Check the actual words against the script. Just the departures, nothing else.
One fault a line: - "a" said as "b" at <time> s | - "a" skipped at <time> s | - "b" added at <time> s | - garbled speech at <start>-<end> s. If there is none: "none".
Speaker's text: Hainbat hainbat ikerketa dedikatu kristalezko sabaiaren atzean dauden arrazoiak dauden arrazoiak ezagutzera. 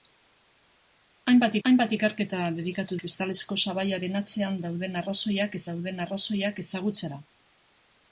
none